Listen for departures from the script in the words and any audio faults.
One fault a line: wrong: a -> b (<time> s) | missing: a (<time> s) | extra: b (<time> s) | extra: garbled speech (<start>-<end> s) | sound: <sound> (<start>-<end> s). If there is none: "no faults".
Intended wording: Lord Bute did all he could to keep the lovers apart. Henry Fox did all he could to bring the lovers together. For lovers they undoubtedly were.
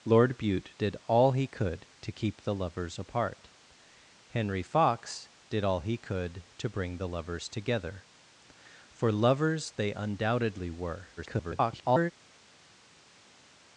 extra: garbled speech (11.2-12.1 s)